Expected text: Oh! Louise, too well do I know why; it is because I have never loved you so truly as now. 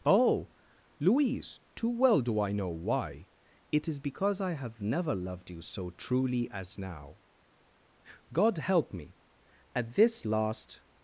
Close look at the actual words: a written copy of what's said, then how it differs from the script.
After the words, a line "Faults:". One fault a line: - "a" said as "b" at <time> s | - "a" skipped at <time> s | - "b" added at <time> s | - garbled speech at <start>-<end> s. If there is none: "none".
Oh! Louise, too well do I know why; it is because I have never loved you so truly as now. God help me!" At this last
Faults:
- "God help me At this last" added at 8.3 s